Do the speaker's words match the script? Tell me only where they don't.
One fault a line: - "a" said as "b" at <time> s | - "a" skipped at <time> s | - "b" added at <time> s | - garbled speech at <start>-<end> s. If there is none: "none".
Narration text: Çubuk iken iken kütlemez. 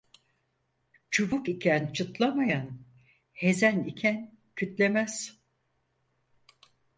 - "çıtlamayan hezen" added at 1.9 s